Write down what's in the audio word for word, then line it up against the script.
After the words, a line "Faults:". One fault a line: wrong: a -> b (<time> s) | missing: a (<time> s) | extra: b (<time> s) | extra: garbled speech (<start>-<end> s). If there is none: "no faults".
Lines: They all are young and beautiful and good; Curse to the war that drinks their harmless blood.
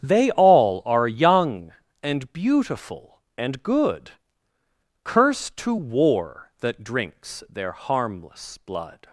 They all are young and beautiful and good; Curse to war that drinks their harmless blood.
Faults:
missing: the (5.8 s)